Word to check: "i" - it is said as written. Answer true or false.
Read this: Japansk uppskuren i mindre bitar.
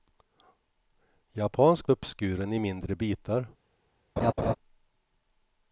true